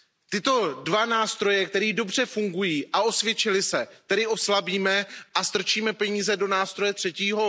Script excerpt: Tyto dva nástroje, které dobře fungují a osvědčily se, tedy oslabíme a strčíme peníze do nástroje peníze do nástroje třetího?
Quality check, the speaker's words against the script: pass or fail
fail